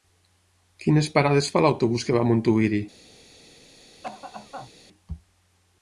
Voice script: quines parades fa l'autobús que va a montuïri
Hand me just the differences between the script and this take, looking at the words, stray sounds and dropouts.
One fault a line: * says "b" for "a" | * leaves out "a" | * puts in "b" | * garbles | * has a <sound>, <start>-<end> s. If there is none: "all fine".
* has a cough, 4.0-4.7 s